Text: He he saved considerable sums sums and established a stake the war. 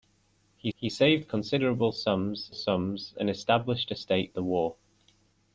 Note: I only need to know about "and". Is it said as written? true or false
true